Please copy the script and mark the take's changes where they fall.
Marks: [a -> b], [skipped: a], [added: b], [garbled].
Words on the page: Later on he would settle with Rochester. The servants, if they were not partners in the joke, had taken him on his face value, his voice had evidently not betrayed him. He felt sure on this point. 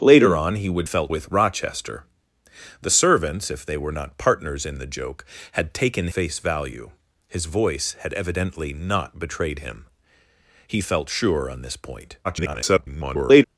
Later on he would [settle -> felt] with Rochester. The servants, if they were not partners in the joke, had taken [skipped: him on his] face value, his voice had evidently not betrayed him. He felt sure on this point. [garbled]